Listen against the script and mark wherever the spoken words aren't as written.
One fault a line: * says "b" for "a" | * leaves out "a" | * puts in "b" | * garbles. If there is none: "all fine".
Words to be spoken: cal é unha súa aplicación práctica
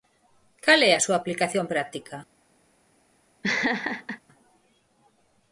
* says "a" for "unha"